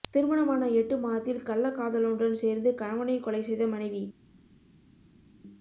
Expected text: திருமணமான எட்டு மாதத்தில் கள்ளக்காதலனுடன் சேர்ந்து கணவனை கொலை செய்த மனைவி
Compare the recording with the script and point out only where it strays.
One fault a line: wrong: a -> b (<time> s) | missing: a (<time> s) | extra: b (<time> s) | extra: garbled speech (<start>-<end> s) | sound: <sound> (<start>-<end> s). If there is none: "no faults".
no faults